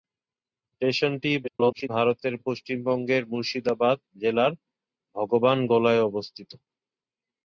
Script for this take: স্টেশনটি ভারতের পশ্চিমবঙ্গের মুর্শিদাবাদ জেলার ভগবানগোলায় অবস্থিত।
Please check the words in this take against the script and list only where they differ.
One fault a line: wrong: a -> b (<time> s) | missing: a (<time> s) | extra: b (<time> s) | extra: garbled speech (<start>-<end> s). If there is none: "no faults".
extra: garbled speech (1.4-1.9 s)